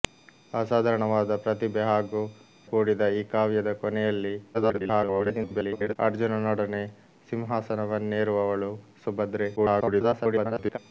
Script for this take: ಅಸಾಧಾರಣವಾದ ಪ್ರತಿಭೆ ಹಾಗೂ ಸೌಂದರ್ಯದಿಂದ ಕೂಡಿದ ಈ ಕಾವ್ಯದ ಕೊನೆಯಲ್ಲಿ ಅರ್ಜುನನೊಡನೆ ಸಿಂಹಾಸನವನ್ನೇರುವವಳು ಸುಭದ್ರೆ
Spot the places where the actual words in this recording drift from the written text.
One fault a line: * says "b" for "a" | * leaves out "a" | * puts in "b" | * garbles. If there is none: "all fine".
* leaves out "ಸೌಂದರ್ಯದಿಂದ"
* garbles
* garbles